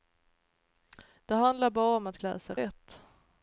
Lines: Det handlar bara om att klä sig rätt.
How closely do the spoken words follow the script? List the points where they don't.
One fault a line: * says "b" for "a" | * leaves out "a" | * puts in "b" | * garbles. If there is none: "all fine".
all fine